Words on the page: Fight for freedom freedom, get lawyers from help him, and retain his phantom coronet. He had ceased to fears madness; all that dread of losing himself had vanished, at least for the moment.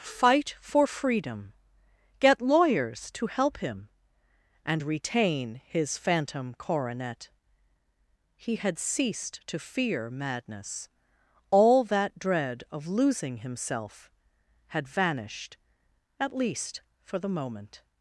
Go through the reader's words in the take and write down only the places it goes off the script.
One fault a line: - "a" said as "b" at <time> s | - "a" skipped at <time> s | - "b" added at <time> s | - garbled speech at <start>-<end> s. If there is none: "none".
- "freedom" skipped at 1.5 s
- "from" said as "to" at 3.1 s
- "fears" said as "fear" at 9.6 s